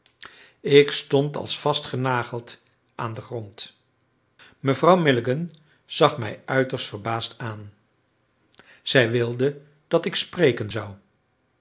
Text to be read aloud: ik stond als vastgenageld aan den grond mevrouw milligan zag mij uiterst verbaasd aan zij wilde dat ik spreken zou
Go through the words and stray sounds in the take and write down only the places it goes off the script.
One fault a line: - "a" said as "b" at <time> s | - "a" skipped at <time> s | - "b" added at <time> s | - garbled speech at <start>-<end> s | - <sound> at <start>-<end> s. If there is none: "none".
none